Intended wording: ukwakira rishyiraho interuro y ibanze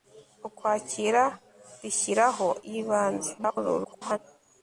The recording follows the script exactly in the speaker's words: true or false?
false